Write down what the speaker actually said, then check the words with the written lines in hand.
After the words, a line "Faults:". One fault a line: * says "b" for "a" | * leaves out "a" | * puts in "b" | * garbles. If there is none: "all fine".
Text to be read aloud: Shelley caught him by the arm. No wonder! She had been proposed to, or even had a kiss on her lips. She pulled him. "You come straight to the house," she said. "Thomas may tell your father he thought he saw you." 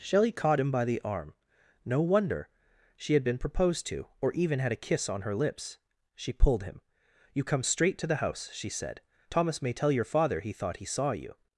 Shelley caught him by the arm. No wonder! She had been proposed to, or even had a kiss on her lips. She pulled him. "You come straight to the house," she said. "Thomas may tell your father he thought he saw you."
Faults:
all fine